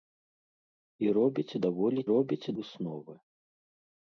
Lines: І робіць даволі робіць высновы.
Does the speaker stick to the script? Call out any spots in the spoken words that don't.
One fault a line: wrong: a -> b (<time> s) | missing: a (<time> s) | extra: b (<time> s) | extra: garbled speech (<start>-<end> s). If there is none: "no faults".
no faults